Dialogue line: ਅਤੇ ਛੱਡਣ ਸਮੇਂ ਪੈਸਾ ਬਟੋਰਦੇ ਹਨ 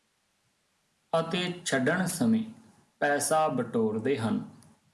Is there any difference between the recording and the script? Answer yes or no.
no